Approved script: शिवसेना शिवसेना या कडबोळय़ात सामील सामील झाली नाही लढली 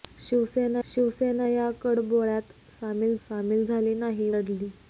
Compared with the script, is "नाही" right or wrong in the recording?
right